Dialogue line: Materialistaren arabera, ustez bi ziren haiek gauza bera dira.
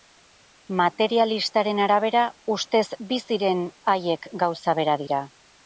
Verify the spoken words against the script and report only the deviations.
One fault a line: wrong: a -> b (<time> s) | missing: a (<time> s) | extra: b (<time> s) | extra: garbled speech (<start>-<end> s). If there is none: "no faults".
no faults